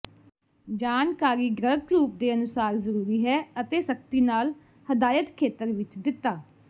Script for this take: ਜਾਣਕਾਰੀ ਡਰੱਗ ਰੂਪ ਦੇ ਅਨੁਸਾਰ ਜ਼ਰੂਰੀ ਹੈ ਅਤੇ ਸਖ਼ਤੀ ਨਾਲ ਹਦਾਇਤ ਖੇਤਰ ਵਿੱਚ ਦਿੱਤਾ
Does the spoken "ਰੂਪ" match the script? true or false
true